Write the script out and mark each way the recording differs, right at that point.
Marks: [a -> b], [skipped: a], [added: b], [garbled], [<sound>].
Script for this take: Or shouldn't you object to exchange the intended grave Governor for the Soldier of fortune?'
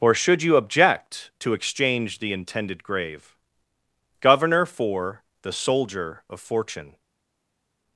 Or [shouldn't -> should] you object to exchange the intended grave Governor for the Soldier of fortune?'